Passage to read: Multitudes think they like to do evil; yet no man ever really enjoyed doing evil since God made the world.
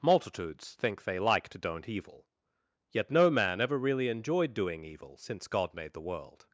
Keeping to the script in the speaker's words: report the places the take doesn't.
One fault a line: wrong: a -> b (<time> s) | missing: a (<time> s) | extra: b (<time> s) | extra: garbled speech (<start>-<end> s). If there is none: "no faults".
wrong: do -> don't (1.6 s)